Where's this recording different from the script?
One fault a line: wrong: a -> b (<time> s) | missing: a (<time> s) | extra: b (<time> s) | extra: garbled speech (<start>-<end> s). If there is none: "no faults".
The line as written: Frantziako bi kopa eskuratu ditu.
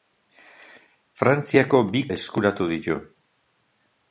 missing: kopa (2.0 s)